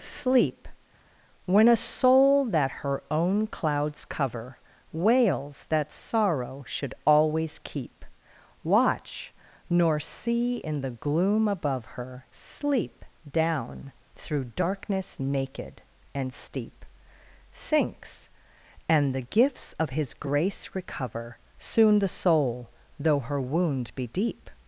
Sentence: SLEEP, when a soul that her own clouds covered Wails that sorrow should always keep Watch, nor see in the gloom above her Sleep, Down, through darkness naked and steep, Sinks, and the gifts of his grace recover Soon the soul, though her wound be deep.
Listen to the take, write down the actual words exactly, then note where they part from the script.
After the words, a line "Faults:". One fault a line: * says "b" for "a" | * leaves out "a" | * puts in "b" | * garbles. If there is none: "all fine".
SLEEP, when a soul that her own clouds cover Wails that sorrow should always keep Watch, nor see in the gloom above her Sleep, Down, through darkness naked and steep, Sinks, and the gifts of his grace recover Soon the soul, though her wound be deep.
Faults:
* says "cover" for "covered"